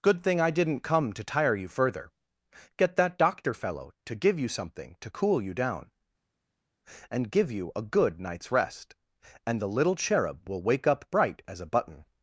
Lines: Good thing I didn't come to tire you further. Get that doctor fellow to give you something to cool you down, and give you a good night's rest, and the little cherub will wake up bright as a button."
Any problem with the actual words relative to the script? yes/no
no